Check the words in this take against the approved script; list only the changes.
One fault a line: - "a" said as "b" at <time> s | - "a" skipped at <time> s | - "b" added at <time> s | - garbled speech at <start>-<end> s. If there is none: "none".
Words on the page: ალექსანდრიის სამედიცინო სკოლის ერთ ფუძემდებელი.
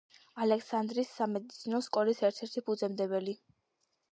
- "ერთი" added at 2.5 s